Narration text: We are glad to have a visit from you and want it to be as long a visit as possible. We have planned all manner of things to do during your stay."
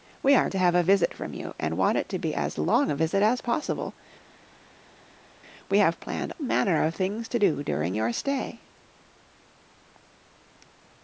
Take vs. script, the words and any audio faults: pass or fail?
fail